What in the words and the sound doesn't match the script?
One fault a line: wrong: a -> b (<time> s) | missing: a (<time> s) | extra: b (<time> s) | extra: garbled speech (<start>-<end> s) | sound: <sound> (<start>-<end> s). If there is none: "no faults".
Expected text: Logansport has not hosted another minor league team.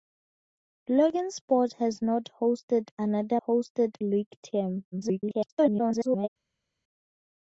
wrong: minor -> hosted (3.5 s)
extra: garbled speech (4.9-6.3 s)